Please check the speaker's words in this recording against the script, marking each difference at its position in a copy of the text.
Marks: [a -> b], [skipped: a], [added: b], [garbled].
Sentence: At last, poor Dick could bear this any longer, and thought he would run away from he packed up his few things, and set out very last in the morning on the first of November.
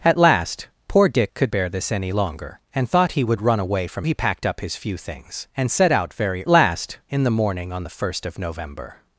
At last, poor Dick could bear this any longer, and thought he would run away from he packed up his few things, and set out very last in the morning on the first of November.